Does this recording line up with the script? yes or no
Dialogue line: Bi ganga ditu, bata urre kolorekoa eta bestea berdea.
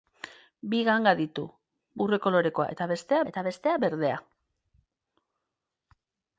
no